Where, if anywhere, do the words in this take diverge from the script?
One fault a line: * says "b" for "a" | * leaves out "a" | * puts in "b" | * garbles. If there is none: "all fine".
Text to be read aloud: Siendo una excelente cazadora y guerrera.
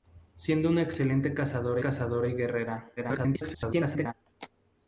* puts in "cazadora"
* garbles